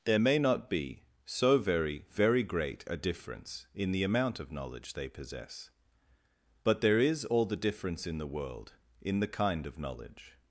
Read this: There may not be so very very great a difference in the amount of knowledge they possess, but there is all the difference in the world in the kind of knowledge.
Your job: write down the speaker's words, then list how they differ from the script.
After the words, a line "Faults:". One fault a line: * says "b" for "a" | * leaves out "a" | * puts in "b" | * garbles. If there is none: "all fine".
There may not be so very very great a difference in the amount of knowledge they possess, but there is all the difference in the world in the kind of knowledge.
Faults:
all fine